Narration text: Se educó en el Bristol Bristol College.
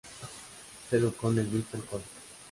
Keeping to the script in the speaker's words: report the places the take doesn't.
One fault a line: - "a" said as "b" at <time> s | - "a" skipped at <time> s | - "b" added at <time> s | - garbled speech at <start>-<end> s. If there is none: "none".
- "Bristol" skipped at 1.9 s